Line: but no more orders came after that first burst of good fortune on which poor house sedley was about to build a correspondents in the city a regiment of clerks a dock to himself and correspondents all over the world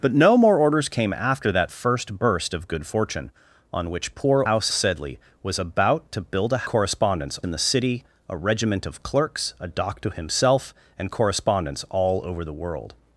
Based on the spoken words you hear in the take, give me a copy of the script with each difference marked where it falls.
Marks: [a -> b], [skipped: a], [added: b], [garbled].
but no more orders came after that first burst of good fortune on which poor house sedley was about to build a correspondents in the city a regiment of clerks a dock to himself and correspondents all over the world